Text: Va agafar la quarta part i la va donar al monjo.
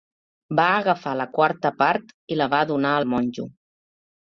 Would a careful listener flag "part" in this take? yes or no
no